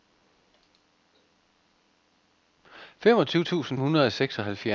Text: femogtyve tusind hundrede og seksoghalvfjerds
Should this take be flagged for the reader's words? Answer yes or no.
no